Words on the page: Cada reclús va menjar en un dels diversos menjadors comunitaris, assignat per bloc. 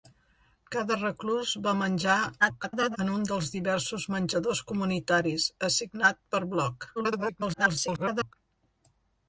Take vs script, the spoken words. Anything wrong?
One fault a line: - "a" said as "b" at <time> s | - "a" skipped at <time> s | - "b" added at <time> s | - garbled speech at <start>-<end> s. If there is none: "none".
- garbled speech at 2.4-3.0 s
- garbled speech at 7.0-8.3 s